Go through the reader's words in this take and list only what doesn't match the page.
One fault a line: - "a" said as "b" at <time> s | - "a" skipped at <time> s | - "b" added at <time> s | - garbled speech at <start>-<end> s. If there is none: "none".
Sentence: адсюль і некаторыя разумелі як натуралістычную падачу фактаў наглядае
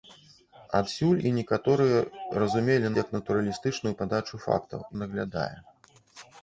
none